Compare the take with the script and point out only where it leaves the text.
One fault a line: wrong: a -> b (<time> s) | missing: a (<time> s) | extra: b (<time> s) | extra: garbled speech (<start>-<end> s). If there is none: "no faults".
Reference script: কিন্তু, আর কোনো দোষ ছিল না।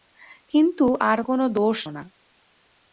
missing: ছিল (1.8 s)